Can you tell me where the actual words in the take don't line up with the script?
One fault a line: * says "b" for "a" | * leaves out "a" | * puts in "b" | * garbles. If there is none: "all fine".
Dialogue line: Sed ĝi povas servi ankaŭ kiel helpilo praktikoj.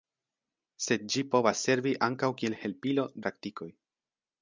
all fine